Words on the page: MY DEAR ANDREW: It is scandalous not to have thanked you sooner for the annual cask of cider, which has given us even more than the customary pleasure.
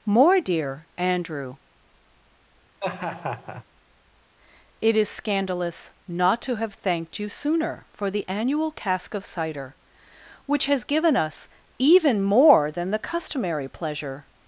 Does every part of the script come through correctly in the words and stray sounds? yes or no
no